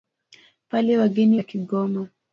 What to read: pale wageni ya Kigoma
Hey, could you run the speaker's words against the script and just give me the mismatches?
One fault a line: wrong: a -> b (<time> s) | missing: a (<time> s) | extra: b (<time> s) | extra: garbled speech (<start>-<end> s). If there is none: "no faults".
no faults